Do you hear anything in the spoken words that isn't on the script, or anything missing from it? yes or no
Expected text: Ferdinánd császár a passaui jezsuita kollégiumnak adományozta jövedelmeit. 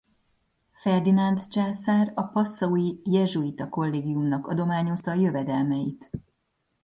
no